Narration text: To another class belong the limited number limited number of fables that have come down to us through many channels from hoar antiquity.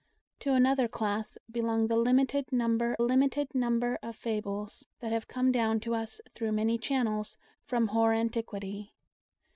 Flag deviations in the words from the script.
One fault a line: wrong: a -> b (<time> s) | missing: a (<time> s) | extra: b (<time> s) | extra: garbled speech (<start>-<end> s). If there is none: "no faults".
no faults